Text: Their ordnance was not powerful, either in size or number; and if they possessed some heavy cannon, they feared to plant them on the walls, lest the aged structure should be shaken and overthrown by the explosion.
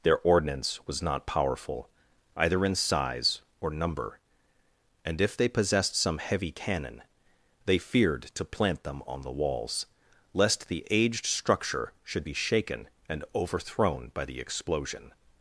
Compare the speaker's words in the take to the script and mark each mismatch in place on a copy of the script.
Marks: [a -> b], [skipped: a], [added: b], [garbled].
Their ordnance was not powerful, either in size or number; and if they possessed some heavy cannon, they feared to plant them on the walls, lest the aged structure should be shaken and overthrown by the explosion.